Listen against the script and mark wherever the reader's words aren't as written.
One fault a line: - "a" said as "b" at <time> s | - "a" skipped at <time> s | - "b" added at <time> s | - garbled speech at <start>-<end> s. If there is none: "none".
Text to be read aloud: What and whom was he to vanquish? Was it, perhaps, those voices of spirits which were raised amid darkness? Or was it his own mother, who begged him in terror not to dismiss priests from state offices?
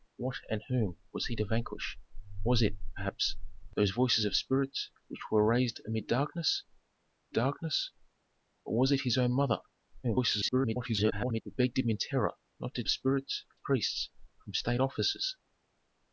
- "darkness" added at 7.3 s
- garbled speech at 10.0-11.4 s
- "dismiss" said as "spirits" at 12.9 s